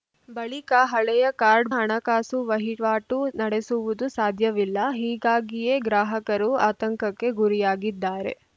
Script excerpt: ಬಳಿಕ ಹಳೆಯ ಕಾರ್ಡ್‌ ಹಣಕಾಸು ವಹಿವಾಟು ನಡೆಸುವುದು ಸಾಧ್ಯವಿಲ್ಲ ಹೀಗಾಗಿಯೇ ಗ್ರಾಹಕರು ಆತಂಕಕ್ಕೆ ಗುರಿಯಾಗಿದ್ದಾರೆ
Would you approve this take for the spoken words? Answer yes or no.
yes